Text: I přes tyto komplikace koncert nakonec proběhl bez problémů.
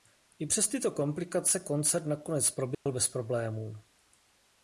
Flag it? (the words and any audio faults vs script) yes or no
yes